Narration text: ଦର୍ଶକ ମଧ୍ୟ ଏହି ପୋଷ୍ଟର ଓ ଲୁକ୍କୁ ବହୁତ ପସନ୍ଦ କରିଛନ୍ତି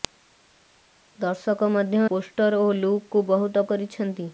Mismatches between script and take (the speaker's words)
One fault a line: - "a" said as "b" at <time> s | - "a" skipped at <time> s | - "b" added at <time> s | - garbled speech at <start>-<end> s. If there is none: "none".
- "ଏହି" skipped at 2.0 s
- "ପସନ୍ଦ" skipped at 3.7 s